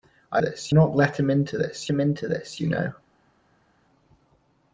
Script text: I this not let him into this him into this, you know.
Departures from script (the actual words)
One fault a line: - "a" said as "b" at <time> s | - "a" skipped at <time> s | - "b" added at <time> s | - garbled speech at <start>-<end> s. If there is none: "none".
none